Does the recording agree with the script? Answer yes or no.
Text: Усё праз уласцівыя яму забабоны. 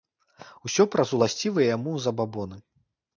yes